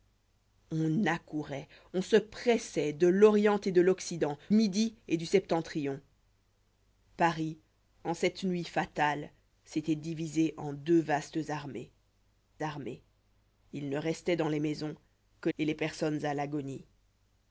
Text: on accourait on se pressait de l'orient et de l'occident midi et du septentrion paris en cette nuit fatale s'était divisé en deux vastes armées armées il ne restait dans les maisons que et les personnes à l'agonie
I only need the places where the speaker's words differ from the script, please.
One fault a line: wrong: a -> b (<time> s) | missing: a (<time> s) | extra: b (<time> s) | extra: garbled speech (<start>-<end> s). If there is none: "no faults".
no faults